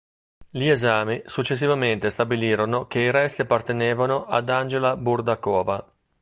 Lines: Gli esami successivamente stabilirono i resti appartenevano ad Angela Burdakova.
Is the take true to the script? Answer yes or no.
no